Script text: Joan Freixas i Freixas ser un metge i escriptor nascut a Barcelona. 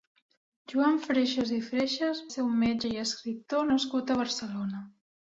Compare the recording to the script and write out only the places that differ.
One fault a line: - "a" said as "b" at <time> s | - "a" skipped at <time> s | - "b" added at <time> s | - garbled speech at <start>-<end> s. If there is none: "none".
none